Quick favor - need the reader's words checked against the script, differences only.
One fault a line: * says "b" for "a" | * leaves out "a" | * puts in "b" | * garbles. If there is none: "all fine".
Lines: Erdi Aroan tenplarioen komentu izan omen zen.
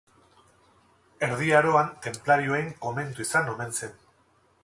all fine